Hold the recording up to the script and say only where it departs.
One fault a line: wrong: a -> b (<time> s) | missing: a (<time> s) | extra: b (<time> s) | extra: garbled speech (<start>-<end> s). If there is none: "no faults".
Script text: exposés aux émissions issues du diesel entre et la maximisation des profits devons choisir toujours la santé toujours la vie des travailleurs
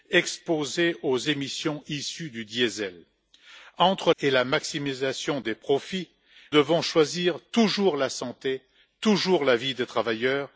no faults